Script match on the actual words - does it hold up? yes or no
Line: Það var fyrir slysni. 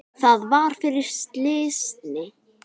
yes